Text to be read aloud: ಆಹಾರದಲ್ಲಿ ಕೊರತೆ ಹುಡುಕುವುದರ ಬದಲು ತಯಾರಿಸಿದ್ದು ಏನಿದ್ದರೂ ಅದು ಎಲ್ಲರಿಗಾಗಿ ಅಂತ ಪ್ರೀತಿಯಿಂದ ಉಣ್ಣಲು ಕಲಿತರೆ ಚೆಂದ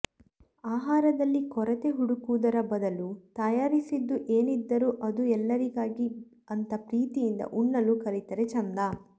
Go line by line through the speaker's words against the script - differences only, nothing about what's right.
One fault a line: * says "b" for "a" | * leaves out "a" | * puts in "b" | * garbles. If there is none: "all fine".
all fine